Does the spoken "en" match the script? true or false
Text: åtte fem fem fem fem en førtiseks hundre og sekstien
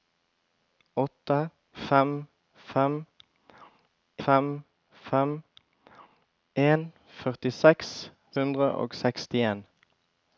true